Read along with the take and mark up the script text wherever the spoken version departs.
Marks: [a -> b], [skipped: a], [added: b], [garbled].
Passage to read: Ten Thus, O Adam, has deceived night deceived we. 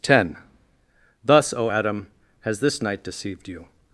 Ten Thus, O Adam, has [deceived -> this] night deceived [we. -> you]